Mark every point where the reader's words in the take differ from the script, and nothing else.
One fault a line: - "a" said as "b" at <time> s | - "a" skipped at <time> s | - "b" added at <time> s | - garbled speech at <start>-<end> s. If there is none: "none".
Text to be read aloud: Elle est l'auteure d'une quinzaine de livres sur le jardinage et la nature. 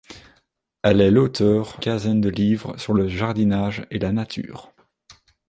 - "d'une" skipped at 1.8 s